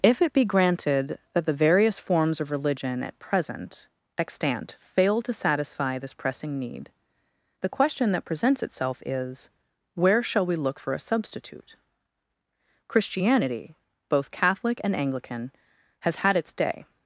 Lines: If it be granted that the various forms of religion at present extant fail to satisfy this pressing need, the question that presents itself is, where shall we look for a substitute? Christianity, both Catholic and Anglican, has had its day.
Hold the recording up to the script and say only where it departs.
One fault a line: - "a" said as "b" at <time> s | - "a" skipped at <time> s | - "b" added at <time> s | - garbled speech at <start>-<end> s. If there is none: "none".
none